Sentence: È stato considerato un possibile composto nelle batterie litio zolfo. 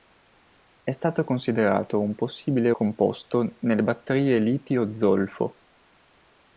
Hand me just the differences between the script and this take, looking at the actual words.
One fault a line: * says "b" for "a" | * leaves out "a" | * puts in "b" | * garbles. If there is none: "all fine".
all fine